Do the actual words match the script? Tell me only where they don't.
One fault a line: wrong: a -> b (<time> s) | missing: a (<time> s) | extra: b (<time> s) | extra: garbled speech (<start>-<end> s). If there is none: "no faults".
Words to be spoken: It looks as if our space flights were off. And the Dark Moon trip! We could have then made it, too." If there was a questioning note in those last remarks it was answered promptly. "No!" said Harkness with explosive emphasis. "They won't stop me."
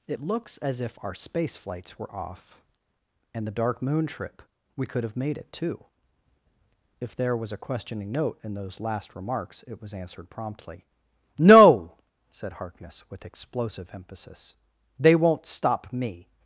missing: then (5.2 s)